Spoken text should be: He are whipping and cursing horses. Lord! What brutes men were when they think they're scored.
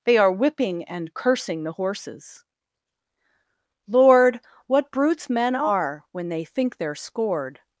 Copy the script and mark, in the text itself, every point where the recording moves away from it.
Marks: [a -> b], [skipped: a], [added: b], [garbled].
[He -> They] are whipping and cursing [added: the] horses. Lord! What brutes men [were -> are] when they think they're scored.